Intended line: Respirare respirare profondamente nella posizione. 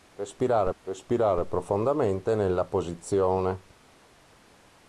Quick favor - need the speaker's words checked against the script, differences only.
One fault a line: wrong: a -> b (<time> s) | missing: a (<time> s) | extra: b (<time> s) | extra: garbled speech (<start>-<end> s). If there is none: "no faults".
no faults